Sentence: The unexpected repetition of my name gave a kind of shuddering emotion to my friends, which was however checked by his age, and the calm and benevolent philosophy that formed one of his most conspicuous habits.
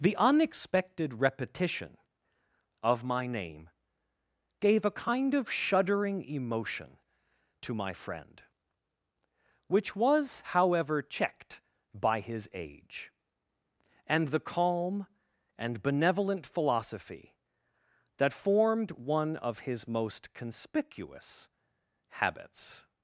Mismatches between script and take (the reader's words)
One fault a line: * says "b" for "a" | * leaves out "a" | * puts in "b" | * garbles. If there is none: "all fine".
* says "friend" for "friends"